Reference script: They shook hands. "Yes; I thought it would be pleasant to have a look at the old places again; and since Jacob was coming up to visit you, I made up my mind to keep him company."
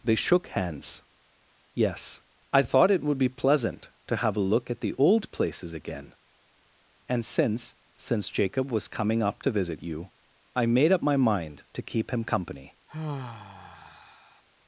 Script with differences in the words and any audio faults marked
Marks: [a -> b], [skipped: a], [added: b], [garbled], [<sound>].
They shook hands. "Yes; I thought it would be pleasant to have a look at the old places again; and since [added: since] Jacob was coming up to visit you, I made up my mind to keep him company." [sigh]